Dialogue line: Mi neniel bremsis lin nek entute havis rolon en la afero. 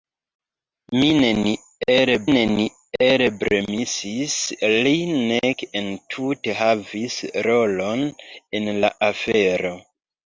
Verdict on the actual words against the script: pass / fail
fail